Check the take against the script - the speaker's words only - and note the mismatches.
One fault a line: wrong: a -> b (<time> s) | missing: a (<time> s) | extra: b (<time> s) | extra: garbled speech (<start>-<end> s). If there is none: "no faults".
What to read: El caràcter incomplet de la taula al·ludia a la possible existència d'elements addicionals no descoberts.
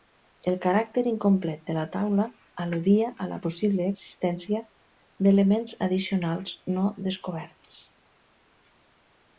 no faults